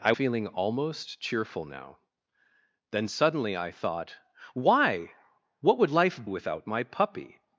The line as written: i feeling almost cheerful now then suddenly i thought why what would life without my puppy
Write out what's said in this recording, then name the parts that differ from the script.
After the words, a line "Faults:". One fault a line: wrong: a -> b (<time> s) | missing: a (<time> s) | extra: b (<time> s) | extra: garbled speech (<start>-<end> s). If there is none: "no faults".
i feeling almost cheerful now then suddenly i thought why what would life without my puppy
Faults:
no faults